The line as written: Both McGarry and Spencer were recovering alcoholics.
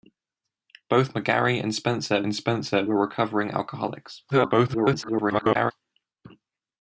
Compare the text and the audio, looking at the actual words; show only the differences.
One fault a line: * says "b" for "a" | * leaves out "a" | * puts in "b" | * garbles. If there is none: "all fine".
* puts in "and Spencer"
* garbles